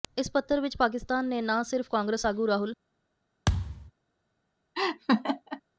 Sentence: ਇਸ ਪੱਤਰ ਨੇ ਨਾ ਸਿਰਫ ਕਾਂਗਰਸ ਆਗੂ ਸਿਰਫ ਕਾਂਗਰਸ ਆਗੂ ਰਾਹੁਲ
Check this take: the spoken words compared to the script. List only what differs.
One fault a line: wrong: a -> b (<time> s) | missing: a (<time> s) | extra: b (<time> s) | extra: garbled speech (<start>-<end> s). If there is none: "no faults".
extra: ਵਿਚ ਪਾਕਿਸਤਾਨ (0.6 s)
missing: ਸਿਰਫ ਕਾਂਗਰਸ ਆਗੂ (2.5 s)